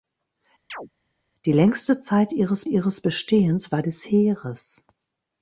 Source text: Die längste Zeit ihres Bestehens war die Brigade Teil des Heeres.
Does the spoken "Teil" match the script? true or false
false